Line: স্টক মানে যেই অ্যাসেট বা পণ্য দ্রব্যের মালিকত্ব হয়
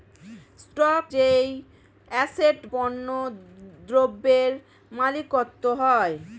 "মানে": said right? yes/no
no